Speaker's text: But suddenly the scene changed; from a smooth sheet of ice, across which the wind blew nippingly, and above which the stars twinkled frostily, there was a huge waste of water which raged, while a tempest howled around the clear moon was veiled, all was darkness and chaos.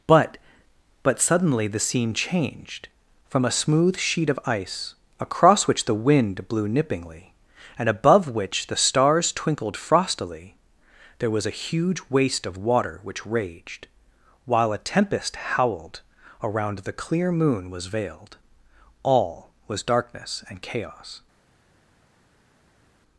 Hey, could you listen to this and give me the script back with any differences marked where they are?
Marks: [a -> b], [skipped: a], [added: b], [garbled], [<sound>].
But [added: but] suddenly the scene changed; from a smooth sheet of ice, across which the wind blew nippingly, and above which the stars twinkled frostily, there was a huge waste of water which raged, while a tempest howled around the clear moon was veiled, all was darkness and chaos.